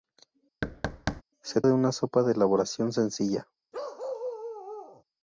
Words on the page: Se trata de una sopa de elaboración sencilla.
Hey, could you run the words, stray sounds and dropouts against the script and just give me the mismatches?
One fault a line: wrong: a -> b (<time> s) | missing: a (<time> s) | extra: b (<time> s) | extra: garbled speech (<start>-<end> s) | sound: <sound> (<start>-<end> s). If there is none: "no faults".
sound: thud (0.6-1.2 s)
missing: trata (1.6 s)
sound: bark (3.7-5.0 s)